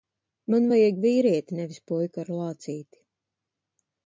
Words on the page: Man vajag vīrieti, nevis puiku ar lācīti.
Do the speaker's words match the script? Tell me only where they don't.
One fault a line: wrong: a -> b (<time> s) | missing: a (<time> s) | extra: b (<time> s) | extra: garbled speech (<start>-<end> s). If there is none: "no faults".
no faults